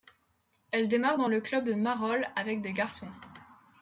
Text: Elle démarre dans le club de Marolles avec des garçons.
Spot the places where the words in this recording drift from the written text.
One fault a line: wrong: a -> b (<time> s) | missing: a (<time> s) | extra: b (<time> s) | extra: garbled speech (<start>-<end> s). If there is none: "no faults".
no faults